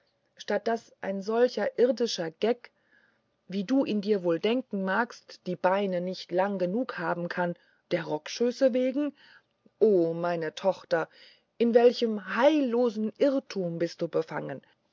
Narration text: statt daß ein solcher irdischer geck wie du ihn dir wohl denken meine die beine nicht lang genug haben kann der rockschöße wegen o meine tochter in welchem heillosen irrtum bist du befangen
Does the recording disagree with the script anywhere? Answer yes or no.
yes